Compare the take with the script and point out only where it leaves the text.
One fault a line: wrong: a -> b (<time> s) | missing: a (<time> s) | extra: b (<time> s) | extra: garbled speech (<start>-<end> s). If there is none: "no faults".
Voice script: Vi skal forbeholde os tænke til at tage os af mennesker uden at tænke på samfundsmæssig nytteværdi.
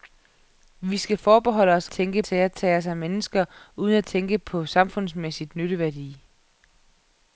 no faults